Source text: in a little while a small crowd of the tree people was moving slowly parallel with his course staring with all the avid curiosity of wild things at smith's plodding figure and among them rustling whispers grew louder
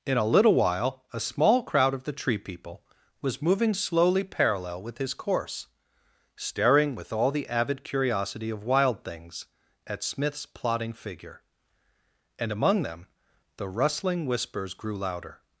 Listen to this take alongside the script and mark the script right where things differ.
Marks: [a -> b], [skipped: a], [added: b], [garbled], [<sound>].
in a little while a small crowd of the tree people was moving slowly parallel with his course staring with all the avid curiosity of wild things at smith's plodding figure and among them [added: the] rustling whispers grew louder